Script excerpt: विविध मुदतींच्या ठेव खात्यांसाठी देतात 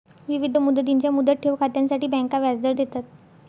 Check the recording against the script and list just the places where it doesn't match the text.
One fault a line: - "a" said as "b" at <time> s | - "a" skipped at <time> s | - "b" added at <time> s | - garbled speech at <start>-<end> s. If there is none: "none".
- "मुदत" added at 1.1 s
- "बँका व्याजदर" added at 2.1 s